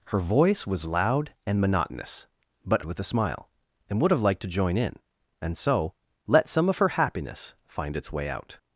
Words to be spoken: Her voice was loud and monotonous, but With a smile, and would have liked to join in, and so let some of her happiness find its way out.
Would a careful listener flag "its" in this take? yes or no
no